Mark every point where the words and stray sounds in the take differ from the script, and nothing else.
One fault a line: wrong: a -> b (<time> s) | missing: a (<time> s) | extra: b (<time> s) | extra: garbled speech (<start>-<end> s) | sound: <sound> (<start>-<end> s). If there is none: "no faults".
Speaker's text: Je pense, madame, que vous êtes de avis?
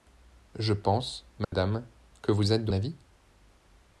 sound: dropout (1.4-1.5 s)